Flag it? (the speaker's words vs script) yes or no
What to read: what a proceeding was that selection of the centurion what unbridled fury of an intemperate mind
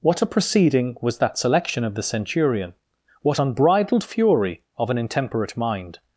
no